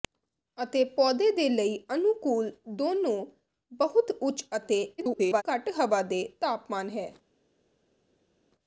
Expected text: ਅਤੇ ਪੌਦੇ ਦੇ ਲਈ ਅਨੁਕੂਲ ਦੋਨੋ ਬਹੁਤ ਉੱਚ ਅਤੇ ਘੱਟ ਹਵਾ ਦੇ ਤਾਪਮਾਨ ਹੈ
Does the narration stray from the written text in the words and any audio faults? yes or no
yes